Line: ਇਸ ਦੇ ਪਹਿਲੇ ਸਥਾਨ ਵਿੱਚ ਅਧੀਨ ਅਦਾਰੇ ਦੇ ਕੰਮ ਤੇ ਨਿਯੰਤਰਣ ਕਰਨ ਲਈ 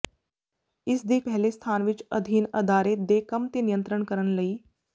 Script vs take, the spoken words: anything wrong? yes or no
no